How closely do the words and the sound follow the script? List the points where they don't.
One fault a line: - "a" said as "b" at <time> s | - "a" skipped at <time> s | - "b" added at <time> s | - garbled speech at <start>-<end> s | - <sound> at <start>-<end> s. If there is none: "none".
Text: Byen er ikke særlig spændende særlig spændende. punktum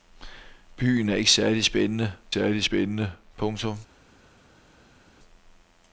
none